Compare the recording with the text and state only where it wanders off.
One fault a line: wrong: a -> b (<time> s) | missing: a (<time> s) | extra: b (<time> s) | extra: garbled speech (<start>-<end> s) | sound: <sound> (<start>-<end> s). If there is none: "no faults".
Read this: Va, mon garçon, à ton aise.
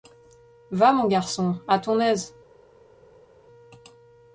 no faults